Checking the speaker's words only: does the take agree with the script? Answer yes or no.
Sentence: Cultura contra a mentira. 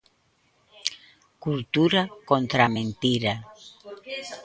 yes